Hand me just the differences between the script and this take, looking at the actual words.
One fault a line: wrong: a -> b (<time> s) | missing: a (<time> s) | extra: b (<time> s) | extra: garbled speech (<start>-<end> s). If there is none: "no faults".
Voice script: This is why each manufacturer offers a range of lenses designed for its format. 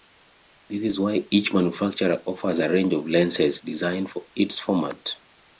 no faults